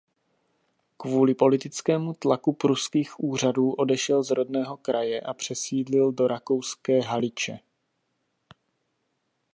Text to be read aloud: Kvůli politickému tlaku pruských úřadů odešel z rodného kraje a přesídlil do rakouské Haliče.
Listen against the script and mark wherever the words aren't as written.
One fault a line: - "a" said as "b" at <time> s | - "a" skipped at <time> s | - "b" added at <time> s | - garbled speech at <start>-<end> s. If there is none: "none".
none